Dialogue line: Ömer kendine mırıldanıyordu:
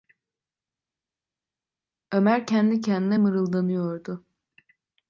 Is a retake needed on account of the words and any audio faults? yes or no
yes